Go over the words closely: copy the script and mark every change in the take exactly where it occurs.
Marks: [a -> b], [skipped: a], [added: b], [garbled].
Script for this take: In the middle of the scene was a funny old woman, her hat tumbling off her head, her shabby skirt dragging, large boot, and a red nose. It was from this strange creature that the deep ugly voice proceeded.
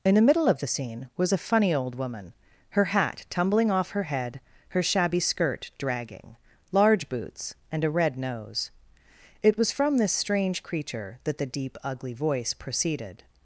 In the middle of the scene was a funny old woman, her hat tumbling off her head, her shabby skirt dragging, large [boot, -> boots] and a red nose. It was from this strange creature that the deep ugly voice proceeded.